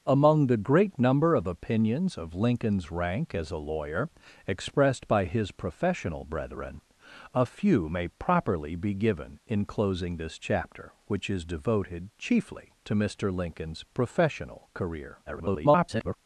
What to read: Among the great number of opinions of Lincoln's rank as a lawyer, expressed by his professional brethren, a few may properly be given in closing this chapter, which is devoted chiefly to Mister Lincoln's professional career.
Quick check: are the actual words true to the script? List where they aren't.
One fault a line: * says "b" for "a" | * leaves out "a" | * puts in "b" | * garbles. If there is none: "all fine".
* garbles